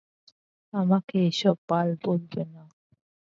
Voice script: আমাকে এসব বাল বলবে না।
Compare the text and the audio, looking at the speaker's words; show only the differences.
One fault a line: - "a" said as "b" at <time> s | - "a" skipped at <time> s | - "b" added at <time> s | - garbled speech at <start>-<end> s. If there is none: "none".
none